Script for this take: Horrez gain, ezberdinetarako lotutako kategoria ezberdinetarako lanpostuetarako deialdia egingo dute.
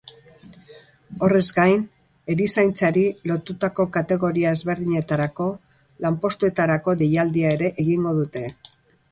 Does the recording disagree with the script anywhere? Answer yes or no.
yes